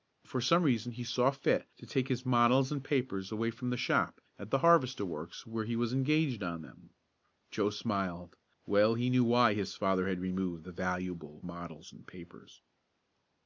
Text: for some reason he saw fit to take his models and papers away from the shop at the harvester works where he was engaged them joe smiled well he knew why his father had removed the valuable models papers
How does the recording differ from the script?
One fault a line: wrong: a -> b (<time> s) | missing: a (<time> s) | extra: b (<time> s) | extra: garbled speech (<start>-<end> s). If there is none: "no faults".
extra: on (6.4 s)
extra: and (11.9 s)